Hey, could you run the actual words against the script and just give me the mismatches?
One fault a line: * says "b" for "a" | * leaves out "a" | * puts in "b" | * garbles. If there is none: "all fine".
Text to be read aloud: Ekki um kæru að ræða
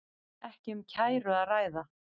all fine